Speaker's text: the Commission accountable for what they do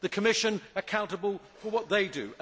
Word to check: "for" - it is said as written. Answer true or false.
true